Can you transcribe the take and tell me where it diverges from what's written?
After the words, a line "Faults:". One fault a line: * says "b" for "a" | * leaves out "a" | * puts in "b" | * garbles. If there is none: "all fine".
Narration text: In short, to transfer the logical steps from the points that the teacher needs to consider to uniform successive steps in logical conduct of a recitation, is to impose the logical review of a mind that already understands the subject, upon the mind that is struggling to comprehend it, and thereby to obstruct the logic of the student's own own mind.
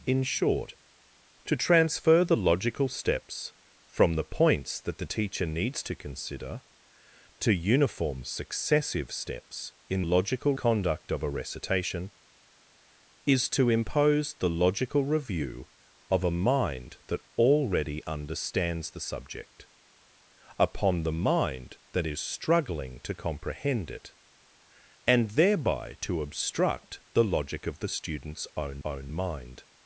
In short, to transfer the logical steps from the points that the teacher needs to consider to uniform successive steps in logical conduct of a recitation, is to impose the logical review of a mind that already understands the subject, upon the mind that is struggling to comprehend it, and thereby to obstruct the logic of the student's own own mind.
Faults:
all fine